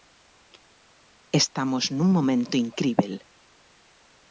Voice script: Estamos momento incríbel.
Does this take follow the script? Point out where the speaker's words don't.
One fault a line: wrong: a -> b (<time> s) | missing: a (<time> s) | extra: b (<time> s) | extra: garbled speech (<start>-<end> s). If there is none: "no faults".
extra: nun (2.0 s)